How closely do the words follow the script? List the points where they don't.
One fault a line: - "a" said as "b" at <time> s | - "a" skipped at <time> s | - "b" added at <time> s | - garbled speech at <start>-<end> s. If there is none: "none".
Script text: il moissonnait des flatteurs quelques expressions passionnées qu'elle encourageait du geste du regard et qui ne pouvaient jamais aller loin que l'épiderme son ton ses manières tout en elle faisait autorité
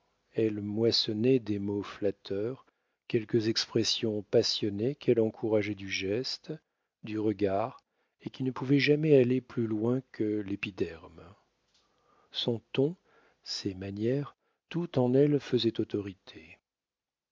- "il" said as "elle" at 0.3 s
- "mots" added at 1.6 s
- "plus" added at 9.4 s